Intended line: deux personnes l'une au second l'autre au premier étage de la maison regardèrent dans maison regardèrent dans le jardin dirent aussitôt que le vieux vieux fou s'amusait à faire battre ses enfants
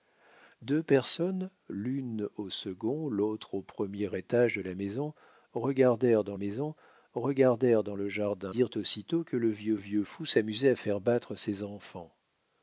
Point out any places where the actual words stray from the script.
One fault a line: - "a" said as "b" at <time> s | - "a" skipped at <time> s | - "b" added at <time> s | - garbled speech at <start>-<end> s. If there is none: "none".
none